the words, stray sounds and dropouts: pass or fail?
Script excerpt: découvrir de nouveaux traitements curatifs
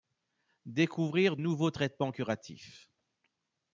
fail